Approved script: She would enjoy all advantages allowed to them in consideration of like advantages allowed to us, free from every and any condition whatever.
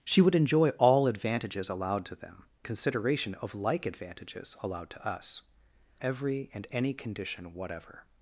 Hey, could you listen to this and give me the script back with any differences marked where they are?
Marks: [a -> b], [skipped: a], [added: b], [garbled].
She would enjoy all advantages allowed to them [skipped: in] consideration of like advantages allowed to us, [skipped: free from] every and any condition whatever.